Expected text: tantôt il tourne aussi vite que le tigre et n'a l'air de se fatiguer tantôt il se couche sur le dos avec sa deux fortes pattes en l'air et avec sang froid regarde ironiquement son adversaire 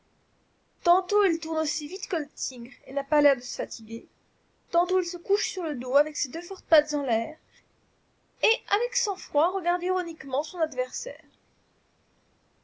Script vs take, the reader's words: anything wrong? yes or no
yes